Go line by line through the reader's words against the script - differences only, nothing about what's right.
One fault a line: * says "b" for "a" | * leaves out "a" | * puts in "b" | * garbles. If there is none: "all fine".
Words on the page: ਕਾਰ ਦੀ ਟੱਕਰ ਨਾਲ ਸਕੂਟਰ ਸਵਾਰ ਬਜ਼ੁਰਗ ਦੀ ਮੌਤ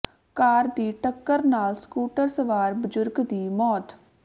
all fine